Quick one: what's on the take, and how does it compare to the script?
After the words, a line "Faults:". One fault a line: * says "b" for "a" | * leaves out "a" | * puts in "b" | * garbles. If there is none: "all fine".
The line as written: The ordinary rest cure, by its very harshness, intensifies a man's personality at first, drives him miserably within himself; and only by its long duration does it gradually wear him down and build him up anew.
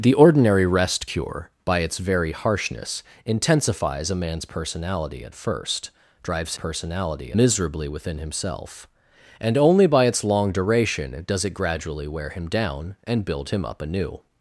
The ordinary rest cure, by its very harshness, intensifies a man's personality at first, drives personality miserably within himself; and only by its long duration does it gradually wear him down and build him up anew.
Faults:
* says "personality" for "him"